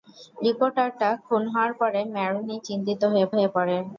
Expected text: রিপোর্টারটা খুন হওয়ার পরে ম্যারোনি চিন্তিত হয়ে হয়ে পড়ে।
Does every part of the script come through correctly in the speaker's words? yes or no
yes